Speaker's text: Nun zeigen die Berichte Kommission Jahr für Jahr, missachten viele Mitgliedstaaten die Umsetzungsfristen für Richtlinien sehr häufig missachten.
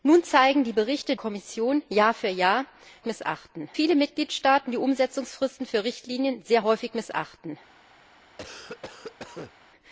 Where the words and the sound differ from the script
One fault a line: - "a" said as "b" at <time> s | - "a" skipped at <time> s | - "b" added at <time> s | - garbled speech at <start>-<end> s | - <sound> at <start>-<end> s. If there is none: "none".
- cough at 8.4-9.5 s